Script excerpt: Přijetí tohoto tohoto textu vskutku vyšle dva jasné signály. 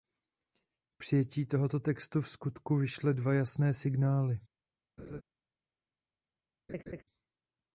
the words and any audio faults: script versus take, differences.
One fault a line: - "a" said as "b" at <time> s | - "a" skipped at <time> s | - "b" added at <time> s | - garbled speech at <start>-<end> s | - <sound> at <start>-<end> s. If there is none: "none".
- "tohoto" skipped at 1.8 s
- laugh at 5.0-5.2 s
- laugh at 6.7-7.0 s